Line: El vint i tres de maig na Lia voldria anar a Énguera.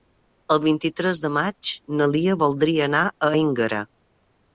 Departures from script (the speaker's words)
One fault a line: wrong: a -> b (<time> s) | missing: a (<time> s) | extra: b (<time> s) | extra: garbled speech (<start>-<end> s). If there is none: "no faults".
no faults